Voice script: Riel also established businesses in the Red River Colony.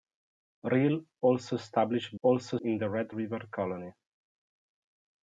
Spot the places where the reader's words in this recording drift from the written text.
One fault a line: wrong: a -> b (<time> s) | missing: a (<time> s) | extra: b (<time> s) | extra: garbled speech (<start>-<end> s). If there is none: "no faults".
wrong: businesses -> also (2.2 s)